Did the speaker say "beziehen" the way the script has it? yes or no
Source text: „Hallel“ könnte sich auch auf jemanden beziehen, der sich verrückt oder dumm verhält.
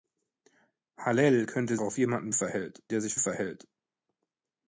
no